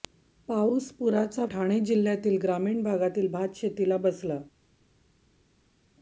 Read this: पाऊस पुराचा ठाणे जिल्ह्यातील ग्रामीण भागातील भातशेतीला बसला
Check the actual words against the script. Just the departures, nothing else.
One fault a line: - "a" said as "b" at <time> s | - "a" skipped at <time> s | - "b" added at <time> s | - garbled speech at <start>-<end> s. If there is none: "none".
none